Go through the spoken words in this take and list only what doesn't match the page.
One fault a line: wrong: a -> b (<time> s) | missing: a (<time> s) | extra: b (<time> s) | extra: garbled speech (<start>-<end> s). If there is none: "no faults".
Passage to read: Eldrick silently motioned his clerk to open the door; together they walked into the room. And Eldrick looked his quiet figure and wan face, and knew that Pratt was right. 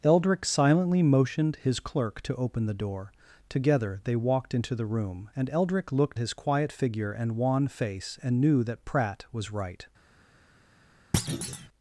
no faults